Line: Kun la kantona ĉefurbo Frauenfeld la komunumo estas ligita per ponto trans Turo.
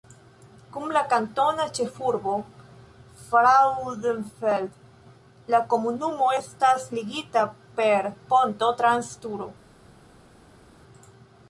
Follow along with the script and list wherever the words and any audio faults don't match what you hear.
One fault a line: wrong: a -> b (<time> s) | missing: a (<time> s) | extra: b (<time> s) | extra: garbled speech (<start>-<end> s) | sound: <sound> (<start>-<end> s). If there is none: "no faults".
no faults